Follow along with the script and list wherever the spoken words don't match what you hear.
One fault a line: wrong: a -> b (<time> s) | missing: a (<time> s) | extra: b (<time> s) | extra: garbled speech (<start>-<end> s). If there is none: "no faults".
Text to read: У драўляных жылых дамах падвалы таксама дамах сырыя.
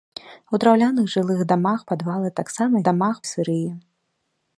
no faults